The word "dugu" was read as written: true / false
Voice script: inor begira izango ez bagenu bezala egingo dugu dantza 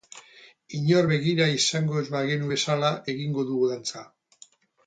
true